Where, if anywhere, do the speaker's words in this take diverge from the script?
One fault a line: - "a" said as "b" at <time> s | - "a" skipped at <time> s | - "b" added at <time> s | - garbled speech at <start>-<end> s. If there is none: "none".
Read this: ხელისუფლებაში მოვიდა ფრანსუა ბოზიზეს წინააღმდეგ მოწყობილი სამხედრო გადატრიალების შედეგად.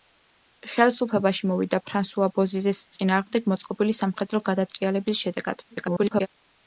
- garbled speech at 5.7-6.3 s